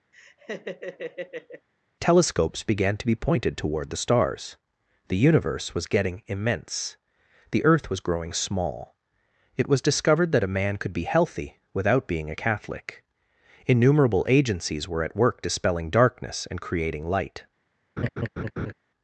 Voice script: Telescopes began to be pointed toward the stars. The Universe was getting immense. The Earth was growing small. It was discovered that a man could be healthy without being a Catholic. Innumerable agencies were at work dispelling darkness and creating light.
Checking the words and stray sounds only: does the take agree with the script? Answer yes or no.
no